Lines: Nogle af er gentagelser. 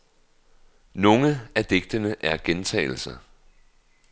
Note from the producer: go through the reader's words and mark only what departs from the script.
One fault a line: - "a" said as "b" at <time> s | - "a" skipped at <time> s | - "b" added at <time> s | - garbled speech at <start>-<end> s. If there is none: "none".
- "digtene" added at 1.6 s